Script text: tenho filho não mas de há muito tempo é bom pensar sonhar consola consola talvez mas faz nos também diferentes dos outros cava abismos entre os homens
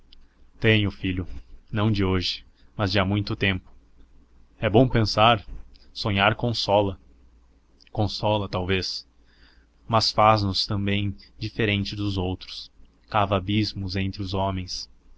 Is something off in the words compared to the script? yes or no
yes